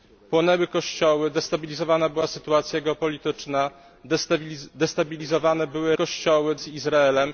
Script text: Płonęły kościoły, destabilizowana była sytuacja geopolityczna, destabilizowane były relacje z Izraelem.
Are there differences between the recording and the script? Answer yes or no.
yes